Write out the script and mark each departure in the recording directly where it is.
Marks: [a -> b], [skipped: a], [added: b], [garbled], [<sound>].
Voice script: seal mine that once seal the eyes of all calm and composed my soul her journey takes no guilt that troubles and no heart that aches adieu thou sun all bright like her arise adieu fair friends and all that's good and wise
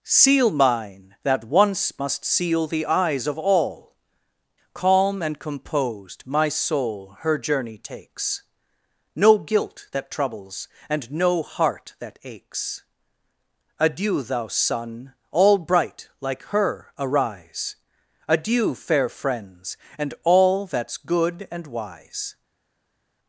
seal mine that once [added: must] seal the eyes of all calm and composed my soul her journey takes no guilt that troubles and no heart that aches adieu thou sun all bright like her arise adieu fair friends and all that's good and wise